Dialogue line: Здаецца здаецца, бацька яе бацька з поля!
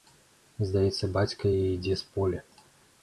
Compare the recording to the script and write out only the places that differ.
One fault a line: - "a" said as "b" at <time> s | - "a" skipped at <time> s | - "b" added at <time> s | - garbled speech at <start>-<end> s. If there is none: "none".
- "здаецца" skipped at 1.1 s
- "бацька" said as "ідзе" at 1.7 s